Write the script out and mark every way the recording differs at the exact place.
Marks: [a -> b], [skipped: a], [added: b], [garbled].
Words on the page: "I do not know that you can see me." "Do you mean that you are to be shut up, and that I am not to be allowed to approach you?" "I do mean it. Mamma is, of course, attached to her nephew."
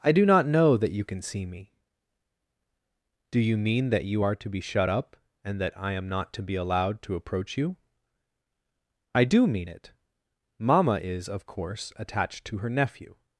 "I do not know that you can see me." "Do you mean that you are to be shut up, and that I am not to be allowed to approach you?" "I do mean it. Mamma is, of course, attached to her nephew."